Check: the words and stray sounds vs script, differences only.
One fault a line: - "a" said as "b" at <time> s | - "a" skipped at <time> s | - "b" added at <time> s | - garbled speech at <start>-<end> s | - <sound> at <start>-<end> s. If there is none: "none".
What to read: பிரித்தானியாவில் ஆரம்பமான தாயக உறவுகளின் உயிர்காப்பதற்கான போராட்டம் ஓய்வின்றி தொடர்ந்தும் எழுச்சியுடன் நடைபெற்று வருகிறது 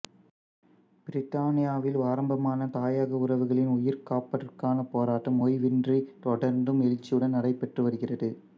none